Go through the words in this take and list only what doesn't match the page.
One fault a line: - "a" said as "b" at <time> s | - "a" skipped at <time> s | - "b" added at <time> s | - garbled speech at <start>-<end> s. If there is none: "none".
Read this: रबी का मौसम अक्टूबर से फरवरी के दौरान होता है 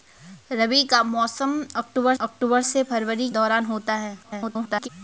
- "अक्टूबर" added at 2.2 s
- "के" skipped at 3.3 s
- garbled speech at 4.2-4.9 s